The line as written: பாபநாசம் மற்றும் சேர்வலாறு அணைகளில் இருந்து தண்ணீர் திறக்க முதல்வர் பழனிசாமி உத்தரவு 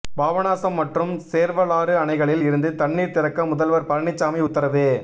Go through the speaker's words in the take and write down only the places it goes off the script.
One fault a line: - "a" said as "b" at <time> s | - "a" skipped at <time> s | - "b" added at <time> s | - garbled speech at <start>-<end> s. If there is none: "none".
none